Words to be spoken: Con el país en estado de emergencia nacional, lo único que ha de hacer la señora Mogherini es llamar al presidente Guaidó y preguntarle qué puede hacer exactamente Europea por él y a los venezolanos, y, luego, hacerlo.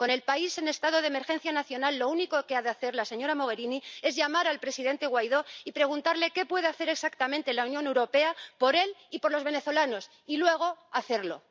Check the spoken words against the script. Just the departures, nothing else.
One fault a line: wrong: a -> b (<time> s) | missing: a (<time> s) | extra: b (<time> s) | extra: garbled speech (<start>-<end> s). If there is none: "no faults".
extra: la Unión (7.5 s)
wrong: a -> por (9.2 s)